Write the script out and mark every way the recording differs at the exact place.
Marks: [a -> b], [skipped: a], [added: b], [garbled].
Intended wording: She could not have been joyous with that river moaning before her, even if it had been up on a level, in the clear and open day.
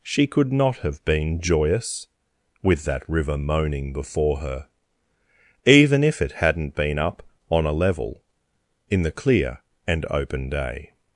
She could not have been joyous with that river moaning before her, even if it [had -> hadn't] been up on a level, in the clear and open day.